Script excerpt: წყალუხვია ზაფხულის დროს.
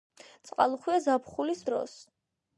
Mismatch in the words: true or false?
false